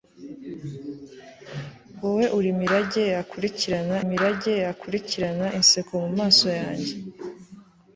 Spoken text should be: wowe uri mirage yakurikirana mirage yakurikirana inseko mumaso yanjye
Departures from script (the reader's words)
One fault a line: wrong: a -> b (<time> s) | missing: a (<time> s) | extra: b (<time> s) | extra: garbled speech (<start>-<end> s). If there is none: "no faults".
no faults